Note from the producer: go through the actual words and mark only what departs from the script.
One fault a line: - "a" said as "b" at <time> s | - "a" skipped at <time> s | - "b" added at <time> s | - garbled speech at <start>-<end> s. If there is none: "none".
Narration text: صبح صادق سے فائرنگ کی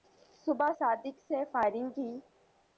none